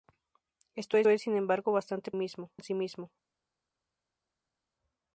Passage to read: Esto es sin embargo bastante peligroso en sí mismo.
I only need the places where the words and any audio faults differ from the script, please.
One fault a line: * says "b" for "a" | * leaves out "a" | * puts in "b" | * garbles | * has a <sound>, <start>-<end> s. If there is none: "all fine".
* puts in "es"
* says "mismo" for "peligroso"